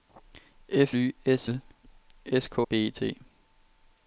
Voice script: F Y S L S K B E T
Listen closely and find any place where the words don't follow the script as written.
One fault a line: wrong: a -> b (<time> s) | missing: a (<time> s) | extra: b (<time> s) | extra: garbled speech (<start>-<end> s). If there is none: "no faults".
no faults